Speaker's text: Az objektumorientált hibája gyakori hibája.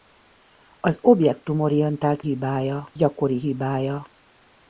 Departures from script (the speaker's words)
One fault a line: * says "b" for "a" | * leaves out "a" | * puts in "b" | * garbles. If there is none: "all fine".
all fine